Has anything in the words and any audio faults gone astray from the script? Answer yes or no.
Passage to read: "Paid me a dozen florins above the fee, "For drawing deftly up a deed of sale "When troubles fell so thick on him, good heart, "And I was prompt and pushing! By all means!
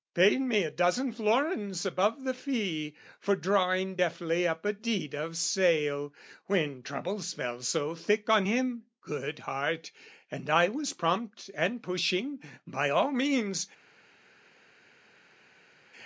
no